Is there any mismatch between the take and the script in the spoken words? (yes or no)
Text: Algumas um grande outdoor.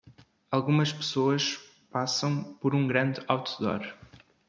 yes